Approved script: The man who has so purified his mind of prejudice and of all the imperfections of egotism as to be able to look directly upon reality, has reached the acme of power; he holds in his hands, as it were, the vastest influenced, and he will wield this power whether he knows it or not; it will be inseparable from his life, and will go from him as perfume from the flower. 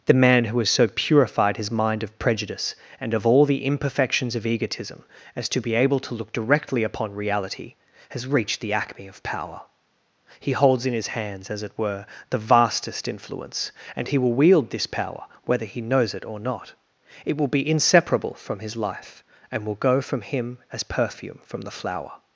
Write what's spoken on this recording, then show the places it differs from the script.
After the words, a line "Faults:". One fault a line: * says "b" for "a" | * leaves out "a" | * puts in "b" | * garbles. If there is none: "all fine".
The man who has so purified his mind of prejudice and of all the imperfections of egotism as to be able to look directly upon reality, has reached the acme of power; he holds in his hands, as it were, the vastest influence, and he will wield this power whether he knows it or not; it will be inseparable from his life, and will go from him as perfume from the flower.
Faults:
* says "influence" for "influenced"